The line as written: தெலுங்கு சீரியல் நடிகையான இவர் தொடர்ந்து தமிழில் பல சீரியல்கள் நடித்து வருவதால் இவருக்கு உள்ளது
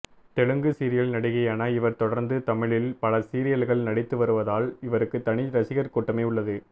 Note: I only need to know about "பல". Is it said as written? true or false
true